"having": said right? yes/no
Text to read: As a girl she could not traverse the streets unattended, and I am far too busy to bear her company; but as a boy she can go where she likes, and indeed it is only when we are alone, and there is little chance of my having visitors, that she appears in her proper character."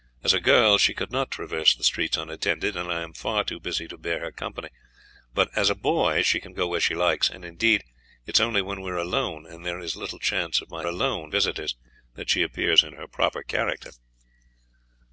no